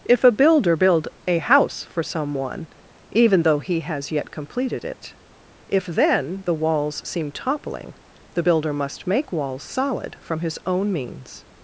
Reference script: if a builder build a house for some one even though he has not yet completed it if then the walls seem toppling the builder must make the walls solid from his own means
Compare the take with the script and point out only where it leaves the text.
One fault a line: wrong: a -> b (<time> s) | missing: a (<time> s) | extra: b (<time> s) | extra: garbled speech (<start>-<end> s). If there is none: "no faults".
missing: not (4.1 s)
missing: the (9.3 s)